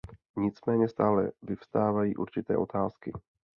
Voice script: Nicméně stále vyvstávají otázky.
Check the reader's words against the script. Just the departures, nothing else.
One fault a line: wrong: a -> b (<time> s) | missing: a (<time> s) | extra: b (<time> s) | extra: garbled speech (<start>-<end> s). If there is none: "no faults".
extra: určité (2.2 s)